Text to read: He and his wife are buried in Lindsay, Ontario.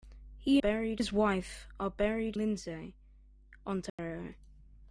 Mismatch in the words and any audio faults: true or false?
true